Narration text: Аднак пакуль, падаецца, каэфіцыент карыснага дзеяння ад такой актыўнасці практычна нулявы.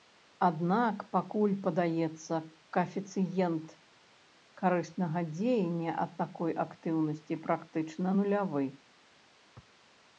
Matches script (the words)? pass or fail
pass